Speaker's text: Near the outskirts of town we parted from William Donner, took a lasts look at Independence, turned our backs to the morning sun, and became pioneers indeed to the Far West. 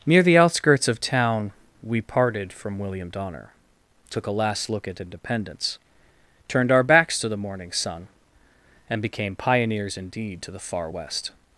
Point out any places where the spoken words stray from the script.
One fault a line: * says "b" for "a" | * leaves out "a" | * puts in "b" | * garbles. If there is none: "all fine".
* says "last" for "lasts"